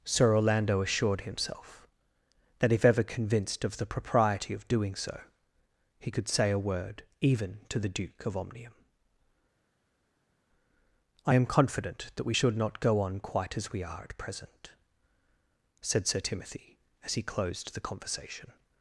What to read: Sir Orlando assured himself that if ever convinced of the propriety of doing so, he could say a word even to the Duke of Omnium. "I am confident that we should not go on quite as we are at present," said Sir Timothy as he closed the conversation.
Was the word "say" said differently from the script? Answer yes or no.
no